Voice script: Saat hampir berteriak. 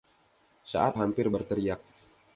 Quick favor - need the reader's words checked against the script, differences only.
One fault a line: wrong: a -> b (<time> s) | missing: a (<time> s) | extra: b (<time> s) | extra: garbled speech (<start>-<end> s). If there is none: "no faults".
no faults